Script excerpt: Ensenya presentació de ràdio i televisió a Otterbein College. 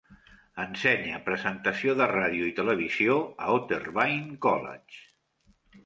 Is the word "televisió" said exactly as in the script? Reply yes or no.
yes